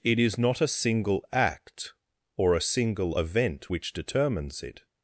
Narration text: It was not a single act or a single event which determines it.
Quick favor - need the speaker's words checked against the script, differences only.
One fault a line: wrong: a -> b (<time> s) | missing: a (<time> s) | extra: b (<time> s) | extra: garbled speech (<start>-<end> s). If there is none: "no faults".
wrong: was -> is (0.2 s)